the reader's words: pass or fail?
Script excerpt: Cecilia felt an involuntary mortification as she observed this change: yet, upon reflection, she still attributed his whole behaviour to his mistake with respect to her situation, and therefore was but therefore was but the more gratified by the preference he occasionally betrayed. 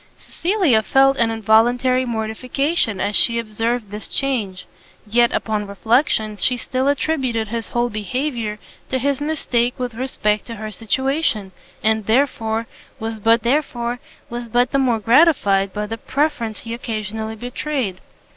pass